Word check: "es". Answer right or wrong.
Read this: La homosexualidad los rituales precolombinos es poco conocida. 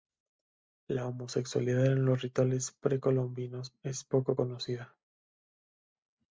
right